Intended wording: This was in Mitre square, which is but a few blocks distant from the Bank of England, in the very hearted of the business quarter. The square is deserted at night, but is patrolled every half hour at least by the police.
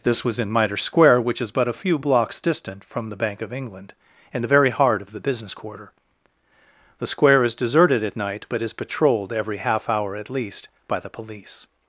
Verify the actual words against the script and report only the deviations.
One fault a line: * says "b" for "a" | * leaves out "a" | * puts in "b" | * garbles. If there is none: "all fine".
* says "heart" for "hearted"